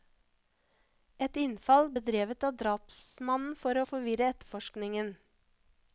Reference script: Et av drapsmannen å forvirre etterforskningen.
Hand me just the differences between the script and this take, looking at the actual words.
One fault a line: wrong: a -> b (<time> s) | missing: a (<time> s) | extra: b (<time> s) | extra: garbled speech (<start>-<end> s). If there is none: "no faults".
extra: innfall bedrevet (1.4 s)
extra: for (3.6 s)